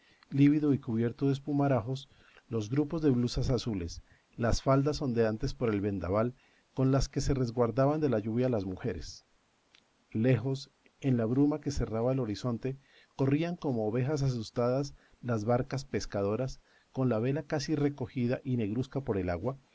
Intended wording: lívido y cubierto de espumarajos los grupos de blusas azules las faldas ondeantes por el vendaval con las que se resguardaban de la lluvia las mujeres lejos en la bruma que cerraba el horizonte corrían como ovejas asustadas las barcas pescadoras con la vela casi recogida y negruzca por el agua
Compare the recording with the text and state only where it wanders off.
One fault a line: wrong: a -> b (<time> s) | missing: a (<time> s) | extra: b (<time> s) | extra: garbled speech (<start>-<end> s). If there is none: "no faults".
no faults